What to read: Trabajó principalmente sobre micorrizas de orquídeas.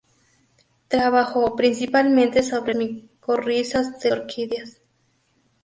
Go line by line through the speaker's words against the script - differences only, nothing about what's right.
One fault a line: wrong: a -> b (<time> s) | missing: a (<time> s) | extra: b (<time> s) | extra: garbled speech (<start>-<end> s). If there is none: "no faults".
no faults